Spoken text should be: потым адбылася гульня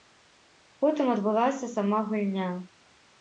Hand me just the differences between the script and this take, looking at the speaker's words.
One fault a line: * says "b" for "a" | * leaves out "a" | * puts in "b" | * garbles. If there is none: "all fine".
* puts in "сама"